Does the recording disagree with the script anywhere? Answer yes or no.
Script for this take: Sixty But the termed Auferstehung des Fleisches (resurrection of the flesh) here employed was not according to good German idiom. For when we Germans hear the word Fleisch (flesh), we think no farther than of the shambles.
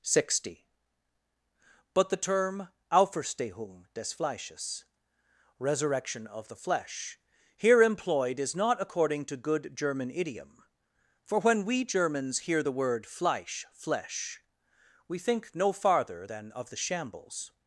yes